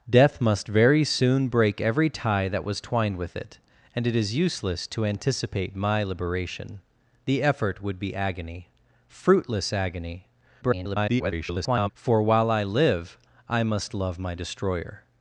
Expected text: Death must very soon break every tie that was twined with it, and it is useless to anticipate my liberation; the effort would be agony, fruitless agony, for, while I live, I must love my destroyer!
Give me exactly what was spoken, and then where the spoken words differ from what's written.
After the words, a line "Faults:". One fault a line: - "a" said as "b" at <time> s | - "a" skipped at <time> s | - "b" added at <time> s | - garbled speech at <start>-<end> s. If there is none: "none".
Death must very soon break every tie that was twined with it, and it is useless to anticipate my liberation; the effort would be agony, fruitless agony, [garbled] for, while I live, I must love my destroyer!
Faults:
- garbled speech at 10.6-11.9 s